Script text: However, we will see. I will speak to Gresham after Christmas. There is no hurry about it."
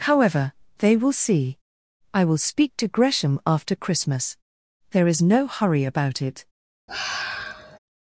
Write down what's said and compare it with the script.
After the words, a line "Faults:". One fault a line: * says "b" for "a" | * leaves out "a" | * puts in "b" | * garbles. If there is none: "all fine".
However, they will see. I will speak to Gresham after Christmas. There is no hurry about it."
Faults:
* says "they" for "we"